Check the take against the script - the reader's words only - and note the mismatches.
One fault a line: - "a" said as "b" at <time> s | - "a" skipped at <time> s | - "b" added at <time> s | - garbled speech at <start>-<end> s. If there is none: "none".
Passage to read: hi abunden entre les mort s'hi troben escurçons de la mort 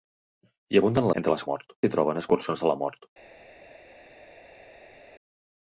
none